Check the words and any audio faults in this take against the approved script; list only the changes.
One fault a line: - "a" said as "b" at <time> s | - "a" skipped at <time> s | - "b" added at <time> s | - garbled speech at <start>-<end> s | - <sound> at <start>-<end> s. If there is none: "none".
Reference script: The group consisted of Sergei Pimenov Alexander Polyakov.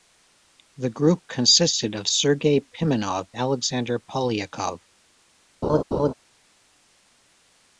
- laugh at 5.6-6.1 s